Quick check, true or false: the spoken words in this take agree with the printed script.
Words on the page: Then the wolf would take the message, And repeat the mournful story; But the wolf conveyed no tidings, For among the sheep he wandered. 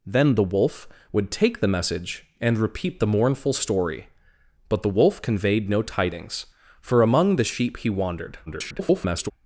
false